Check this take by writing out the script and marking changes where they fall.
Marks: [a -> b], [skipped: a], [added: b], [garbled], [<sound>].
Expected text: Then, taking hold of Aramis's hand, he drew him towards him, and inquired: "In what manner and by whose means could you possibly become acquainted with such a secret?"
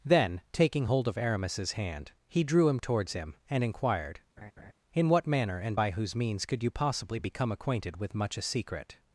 Then, taking hold of Aramis's hand, he drew him towards him, and inquired: [laugh] "In what manner and by whose means could you possibly become acquainted with [such -> much] a secret?"